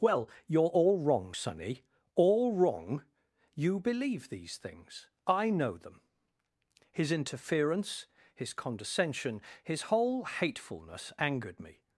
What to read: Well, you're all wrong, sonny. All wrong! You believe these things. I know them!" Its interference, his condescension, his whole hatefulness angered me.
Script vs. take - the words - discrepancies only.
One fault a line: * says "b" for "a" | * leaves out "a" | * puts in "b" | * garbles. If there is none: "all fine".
* says "His" for "Its"